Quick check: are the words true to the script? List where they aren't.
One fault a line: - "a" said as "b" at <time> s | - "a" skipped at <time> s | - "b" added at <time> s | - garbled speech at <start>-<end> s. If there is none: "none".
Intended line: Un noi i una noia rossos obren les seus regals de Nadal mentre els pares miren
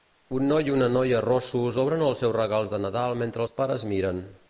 - "les" said as "els" at 2.1 s